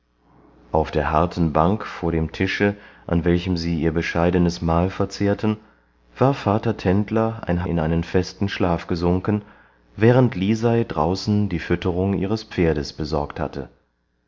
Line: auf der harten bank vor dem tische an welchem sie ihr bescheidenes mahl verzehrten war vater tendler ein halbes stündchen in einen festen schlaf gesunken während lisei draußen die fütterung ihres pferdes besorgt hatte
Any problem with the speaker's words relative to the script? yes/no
yes